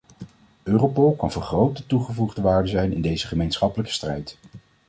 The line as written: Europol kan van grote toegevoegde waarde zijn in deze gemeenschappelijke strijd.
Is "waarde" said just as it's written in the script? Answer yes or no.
yes